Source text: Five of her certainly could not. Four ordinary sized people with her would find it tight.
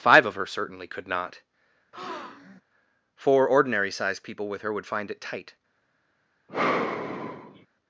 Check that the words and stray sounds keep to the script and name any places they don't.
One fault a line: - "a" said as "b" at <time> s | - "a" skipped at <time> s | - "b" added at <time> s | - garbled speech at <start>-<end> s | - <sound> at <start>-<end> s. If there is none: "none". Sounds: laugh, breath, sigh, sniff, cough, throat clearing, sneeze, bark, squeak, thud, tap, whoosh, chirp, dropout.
- breath at 1.9-2.6 s
- sigh at 6.5-7.7 s